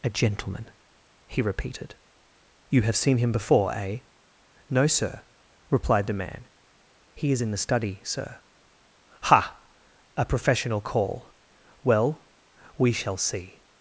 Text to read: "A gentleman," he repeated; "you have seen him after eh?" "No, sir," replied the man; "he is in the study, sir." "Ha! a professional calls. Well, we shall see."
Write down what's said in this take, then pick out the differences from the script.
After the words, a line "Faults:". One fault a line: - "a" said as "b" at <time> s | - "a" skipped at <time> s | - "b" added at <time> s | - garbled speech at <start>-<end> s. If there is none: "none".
"A gentleman," he repeated; "you have seen him before eh?" "No, sir," replied the man; "he is in the study, sir." "Ha! a professional call. Well, we shall see."
Faults:
- "after" said as "before" at 3.3 s
- "calls" said as "call" at 10.8 s